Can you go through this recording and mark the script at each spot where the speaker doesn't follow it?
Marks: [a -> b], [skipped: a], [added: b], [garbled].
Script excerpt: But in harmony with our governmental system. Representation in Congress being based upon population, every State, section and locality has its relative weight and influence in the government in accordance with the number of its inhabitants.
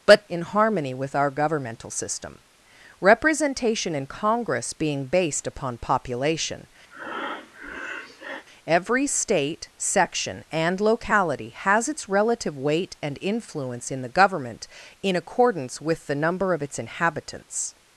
But in harmony with our governmental system. Representation in Congress being based upon population, every State, section and locality has its relative weight and influence in the government in accordance with the number of its inhabitants.